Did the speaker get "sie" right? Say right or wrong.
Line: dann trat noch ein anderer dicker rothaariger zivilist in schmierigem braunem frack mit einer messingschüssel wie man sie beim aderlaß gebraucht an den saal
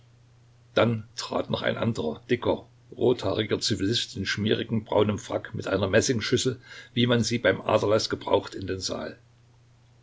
right